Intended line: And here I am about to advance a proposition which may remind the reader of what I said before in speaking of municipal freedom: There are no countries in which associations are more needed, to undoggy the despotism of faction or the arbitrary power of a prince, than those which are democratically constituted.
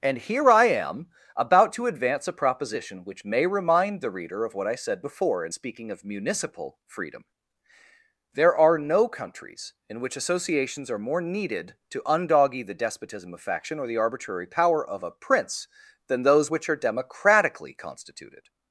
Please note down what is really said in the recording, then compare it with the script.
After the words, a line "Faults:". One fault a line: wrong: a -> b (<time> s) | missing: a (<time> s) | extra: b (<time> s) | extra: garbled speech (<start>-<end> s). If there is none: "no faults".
And here I am about to advance a proposition which may remind the reader of what I said before in speaking of municipal freedom: There are no countries in which associations are more needed, to undoggy the despotism of faction or the arbitrary power of a prince, than those which are democratically constituted.
Faults:
no faults